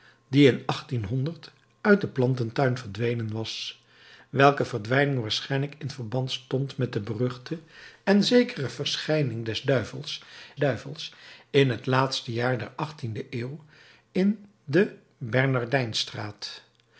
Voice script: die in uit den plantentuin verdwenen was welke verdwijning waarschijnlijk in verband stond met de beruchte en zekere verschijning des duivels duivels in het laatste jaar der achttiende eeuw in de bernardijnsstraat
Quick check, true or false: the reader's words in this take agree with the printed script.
true